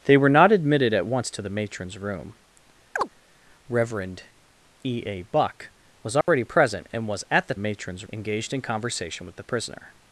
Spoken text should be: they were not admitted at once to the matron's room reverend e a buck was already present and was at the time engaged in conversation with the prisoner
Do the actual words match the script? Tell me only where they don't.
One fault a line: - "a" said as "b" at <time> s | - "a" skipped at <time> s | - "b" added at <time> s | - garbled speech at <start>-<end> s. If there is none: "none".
- "time" said as "matron's" at 7.6 s